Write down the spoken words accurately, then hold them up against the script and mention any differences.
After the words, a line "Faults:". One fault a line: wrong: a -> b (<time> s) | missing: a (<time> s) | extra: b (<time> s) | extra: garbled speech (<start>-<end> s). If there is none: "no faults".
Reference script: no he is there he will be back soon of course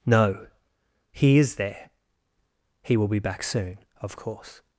no he is there he will be back soon of course
Faults:
no faults